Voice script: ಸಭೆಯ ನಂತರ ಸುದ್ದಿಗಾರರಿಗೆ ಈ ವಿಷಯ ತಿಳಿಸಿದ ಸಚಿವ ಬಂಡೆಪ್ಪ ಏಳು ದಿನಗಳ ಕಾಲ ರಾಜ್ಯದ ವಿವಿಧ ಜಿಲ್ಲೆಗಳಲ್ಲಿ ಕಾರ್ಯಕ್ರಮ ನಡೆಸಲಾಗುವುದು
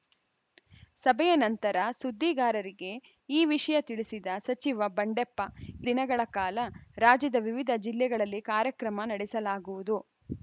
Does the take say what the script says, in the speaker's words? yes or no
no